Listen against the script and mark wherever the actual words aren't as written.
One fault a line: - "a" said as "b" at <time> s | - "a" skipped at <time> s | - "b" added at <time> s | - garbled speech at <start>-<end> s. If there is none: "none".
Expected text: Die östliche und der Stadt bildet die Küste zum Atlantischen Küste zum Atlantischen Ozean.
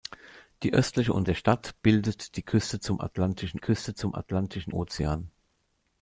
none